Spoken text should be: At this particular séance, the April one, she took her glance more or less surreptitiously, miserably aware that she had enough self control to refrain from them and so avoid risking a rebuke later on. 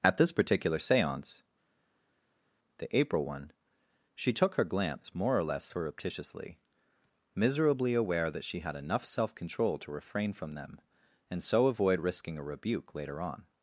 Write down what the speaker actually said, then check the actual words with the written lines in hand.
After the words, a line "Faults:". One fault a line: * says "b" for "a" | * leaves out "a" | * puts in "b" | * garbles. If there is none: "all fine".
At this particular séance, the April one, she took her glance more or less surreptitiously, miserably aware that she had enough self control to refrain from them and so avoid risking a rebuke later on.
Faults:
all fine